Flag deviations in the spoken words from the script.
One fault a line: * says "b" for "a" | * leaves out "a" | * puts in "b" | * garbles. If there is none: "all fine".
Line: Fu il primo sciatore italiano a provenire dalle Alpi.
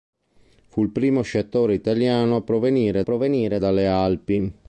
* puts in "provenire"